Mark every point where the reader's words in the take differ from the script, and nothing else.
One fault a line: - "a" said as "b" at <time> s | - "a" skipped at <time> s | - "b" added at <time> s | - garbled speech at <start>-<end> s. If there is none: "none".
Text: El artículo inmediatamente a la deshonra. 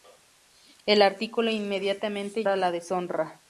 none